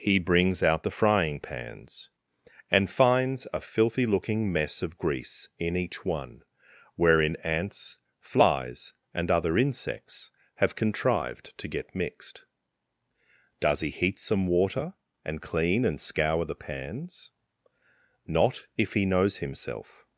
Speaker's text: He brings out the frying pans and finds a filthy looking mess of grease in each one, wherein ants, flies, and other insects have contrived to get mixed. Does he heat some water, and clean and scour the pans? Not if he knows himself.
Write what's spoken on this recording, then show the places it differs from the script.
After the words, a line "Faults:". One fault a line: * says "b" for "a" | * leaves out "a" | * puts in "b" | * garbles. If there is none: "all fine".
He brings out the frying pans and finds a filthy looking mess of grease in each one, wherein ants, flies, and other insects have contrived to get mixed. Does he heat some water, and clean and scour the pans? Not if he knows himself.
Faults:
all fine